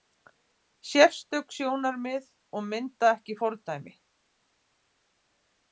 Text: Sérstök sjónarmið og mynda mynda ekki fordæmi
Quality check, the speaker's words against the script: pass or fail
fail